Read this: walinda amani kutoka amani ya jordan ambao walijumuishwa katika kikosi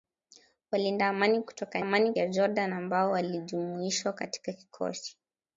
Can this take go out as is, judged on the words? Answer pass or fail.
pass